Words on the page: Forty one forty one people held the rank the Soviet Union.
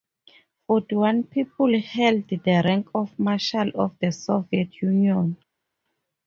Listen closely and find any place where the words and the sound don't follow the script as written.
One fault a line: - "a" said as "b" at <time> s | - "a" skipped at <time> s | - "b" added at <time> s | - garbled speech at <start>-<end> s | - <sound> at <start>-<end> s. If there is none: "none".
- "forty one" skipped at 1.2 s
- "of Marshal of" added at 2.9 s